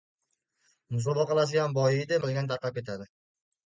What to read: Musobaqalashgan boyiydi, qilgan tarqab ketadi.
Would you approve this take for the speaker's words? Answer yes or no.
yes